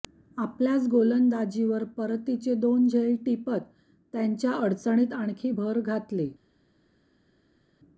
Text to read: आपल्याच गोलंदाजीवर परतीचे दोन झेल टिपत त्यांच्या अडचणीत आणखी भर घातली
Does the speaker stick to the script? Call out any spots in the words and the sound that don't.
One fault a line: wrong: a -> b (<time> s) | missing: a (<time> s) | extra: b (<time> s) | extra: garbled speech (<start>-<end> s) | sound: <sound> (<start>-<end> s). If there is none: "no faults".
no faults